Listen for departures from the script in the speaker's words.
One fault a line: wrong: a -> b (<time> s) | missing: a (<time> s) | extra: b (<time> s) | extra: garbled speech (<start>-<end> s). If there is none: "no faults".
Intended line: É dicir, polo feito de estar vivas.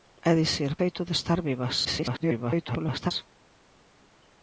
missing: polo (0.7 s)
extra: garbled speech (1.8-3.1 s)